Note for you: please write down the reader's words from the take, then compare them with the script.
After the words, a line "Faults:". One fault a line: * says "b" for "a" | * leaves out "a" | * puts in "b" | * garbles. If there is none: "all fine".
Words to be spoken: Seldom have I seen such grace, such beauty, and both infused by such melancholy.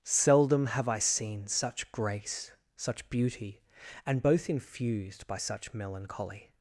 Seldom have I seen such grace, such beauty, and both infused by such melancholy.
Faults:
all fine